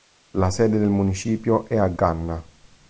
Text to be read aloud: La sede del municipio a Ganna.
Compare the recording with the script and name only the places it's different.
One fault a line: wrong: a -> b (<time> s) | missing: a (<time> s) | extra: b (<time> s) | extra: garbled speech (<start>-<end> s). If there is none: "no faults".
extra: è (1.7 s)